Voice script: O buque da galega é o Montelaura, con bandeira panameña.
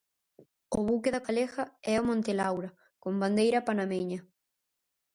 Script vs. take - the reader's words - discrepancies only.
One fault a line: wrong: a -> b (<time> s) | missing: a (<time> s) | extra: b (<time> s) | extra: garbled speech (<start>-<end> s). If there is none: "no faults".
no faults